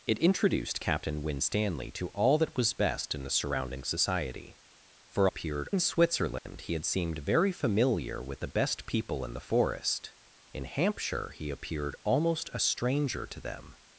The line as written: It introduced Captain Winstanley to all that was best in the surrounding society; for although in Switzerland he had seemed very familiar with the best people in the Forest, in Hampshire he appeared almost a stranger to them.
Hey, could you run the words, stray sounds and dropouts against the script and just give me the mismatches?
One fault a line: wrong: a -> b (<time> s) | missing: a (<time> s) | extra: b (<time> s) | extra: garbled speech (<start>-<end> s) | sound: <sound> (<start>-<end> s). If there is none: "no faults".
wrong: although -> appeared (5.2 s)
sound: dropout (6.4-6.5 s)